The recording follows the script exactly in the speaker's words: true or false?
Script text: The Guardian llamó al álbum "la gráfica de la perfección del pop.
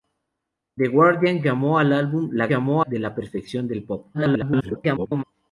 false